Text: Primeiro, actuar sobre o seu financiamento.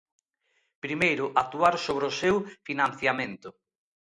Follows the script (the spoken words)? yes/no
yes